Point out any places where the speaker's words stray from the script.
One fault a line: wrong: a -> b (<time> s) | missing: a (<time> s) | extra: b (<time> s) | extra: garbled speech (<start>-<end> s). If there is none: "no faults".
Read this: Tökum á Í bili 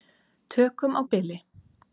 no faults